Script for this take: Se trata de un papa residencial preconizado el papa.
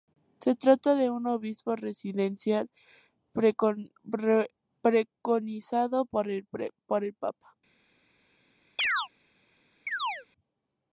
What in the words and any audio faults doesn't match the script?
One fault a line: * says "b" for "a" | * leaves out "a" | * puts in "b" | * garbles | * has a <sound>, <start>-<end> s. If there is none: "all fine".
* says "obispo" for "papa"
* puts in "por"
* has a chirp, 8.8-9.1 s
* has a chirp, 9.9-10.3 s